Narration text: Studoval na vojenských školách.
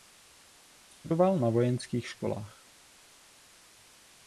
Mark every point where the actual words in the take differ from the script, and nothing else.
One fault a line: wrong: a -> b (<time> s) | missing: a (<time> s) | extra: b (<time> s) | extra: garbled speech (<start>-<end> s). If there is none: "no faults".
no faults